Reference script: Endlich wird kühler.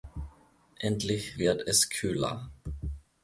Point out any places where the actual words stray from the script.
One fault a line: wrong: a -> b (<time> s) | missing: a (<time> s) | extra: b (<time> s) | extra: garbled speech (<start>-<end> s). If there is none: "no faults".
extra: es (1.7 s)